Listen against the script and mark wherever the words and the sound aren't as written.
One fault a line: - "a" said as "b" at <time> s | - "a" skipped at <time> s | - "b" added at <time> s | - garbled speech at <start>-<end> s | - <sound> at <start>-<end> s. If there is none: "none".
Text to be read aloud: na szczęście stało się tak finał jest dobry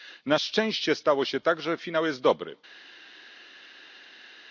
- "że" added at 1.6 s